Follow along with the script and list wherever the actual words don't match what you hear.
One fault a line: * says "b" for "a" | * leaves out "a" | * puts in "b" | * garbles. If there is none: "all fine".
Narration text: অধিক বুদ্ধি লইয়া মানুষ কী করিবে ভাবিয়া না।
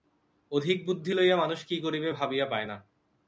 * puts in "পায়"